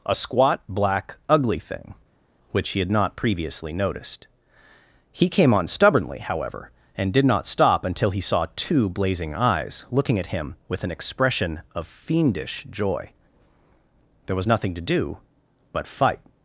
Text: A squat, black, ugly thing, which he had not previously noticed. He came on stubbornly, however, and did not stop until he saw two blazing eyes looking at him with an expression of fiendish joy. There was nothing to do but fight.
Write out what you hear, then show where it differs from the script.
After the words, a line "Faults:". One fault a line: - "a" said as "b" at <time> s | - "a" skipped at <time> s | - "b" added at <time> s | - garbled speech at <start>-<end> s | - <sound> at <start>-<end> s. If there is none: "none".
A squat, black, ugly thing, which he had not previously noticed. He came on stubbornly, however, and did not stop until he saw two blazing eyes looking at him with an expression of fiendish joy. There was nothing to do but fight.
Faults:
none